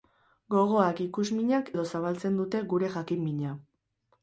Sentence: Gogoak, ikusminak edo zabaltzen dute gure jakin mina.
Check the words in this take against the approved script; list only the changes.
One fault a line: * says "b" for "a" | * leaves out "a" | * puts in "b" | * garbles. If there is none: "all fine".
all fine